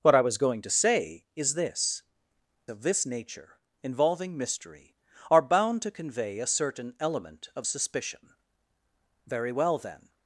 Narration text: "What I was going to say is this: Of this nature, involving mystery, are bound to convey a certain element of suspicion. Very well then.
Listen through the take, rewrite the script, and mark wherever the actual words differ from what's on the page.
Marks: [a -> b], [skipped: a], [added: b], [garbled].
"What I was going to say is this: Of this nature, involving mystery, are bound to convey a certain element of suspicion. Very well then.